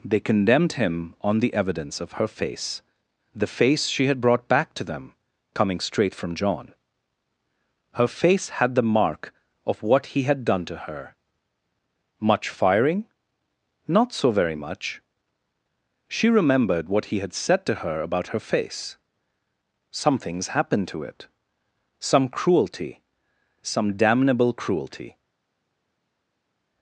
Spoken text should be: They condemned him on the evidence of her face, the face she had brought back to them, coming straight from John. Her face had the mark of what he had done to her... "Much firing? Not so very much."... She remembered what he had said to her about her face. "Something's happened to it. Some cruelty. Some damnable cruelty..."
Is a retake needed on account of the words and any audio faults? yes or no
no